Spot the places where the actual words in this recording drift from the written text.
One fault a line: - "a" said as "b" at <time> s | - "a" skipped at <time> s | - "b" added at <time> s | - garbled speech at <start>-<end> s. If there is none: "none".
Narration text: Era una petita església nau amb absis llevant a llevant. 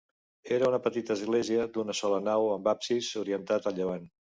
- "d'una sola" added at 1.8 s
- "llevant" said as "orientat" at 3.2 s